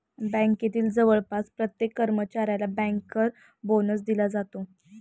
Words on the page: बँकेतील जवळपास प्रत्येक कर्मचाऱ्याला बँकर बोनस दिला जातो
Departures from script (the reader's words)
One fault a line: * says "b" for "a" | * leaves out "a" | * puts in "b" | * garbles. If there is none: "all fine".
all fine